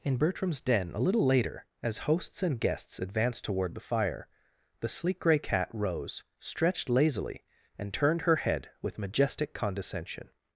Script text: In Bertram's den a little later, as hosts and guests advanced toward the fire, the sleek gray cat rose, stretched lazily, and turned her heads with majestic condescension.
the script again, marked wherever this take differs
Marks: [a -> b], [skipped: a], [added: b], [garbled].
In Bertram's den a little later, as hosts and guests advanced toward the fire, the sleek gray cat rose, stretched lazily, and turned her [heads -> head] with majestic condescension.